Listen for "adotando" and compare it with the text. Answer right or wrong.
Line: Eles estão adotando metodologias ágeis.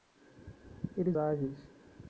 wrong